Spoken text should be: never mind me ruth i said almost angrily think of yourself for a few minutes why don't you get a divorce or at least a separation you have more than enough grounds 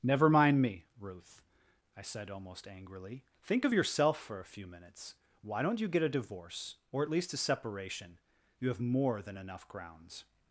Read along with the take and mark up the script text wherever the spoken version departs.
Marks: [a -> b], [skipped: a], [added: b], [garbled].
never mind me ruth i said almost angrily think of yourself for a few minutes why don't you get a divorce or at least a separation you have more than enough grounds